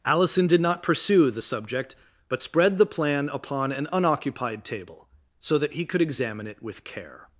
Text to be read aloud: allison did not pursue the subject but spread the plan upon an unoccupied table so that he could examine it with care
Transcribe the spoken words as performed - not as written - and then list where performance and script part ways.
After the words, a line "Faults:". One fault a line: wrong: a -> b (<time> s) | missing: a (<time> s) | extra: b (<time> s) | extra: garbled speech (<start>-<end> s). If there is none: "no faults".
allison did not pursue the subject but spread the plan upon an unoccupied table so that he could examine it with care
Faults:
no faults